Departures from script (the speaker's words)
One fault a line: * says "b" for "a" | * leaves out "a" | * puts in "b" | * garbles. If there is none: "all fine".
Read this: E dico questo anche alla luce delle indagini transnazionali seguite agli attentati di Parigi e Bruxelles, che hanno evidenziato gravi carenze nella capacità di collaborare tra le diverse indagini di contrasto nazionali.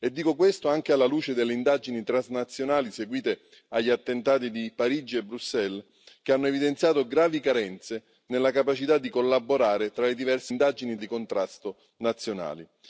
all fine